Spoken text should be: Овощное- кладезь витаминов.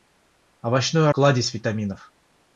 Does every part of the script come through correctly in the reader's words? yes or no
yes